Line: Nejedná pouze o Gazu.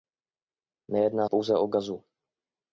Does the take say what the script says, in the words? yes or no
yes